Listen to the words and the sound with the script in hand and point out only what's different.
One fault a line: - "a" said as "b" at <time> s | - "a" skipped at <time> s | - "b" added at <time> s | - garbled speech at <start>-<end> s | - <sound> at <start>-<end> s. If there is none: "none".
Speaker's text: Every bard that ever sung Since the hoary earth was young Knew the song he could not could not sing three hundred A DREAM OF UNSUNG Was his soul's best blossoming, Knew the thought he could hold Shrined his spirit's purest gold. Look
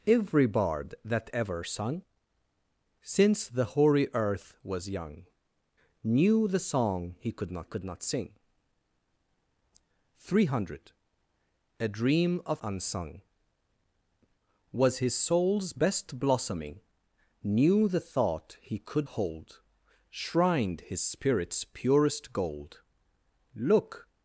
none